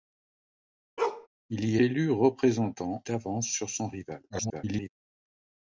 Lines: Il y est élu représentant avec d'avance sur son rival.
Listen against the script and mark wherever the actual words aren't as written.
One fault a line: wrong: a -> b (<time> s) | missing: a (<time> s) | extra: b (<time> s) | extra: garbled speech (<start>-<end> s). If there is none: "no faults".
missing: est (1.8 s)
missing: avec (3.0 s)
extra: garbled speech (4.3-4.9 s)